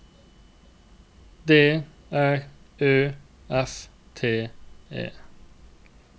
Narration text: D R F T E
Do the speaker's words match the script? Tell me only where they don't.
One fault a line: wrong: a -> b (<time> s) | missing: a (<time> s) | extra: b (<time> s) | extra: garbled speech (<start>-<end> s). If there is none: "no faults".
extra: Ø (2.8 s)